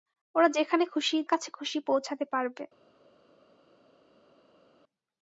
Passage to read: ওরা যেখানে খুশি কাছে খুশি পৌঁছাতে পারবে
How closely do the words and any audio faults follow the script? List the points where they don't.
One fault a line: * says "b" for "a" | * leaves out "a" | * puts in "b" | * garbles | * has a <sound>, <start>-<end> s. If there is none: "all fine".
all fine